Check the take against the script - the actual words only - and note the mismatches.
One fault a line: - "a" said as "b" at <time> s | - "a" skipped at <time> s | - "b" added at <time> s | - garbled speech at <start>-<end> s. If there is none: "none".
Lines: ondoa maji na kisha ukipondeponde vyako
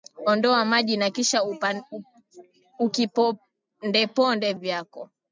none